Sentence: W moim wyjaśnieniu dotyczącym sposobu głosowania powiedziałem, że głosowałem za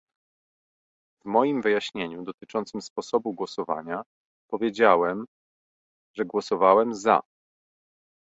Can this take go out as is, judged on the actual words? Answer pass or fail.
pass